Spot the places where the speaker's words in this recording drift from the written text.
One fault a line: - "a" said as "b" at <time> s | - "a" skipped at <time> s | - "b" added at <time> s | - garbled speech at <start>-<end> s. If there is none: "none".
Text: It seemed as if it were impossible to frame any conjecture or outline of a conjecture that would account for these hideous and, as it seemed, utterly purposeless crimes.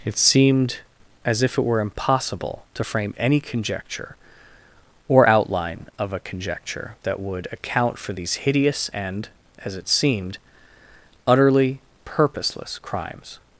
none